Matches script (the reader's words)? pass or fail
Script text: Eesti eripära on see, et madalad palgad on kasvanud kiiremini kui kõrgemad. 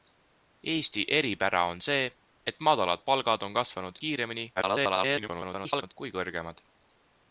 fail